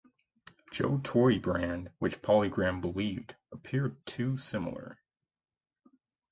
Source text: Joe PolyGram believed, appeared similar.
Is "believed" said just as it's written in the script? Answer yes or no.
yes